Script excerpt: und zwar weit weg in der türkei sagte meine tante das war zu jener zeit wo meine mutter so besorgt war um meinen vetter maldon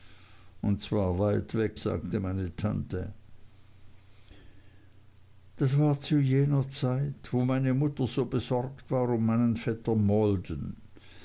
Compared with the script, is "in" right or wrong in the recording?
wrong